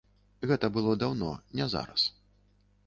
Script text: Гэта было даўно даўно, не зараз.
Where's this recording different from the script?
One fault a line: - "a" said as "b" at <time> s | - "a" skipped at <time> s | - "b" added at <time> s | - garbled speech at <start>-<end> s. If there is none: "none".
- "даўно" skipped at 1.3 s